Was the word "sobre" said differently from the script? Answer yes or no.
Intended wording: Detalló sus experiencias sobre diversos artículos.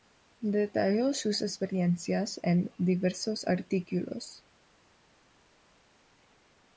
yes